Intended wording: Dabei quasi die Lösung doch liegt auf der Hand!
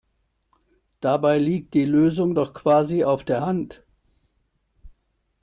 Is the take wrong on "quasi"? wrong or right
wrong